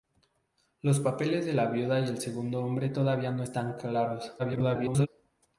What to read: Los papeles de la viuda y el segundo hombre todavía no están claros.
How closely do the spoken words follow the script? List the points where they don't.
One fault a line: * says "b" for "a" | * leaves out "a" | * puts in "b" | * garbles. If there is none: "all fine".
* garbles